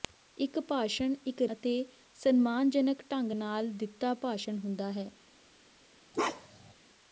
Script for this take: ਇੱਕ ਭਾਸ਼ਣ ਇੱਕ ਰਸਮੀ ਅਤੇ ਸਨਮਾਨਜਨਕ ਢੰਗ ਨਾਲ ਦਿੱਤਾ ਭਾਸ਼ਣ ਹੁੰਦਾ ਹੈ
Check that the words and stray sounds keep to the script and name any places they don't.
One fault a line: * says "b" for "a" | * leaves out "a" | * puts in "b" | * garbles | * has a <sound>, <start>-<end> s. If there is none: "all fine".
* leaves out "ਰਸਮੀ"
* has a bark, 6.1-6.7 s